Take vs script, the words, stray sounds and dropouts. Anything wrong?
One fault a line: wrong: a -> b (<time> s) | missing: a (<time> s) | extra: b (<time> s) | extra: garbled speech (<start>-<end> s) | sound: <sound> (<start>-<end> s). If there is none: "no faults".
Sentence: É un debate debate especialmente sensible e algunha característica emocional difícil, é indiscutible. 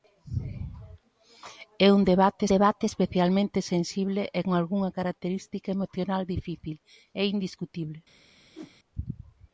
sound: whoosh (8.5-8.7 s)